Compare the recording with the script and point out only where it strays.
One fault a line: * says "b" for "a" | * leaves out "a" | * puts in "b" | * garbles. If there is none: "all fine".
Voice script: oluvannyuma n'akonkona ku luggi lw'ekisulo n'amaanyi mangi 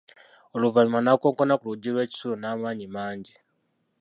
all fine